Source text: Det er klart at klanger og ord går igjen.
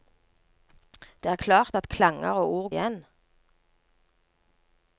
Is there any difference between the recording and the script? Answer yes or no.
yes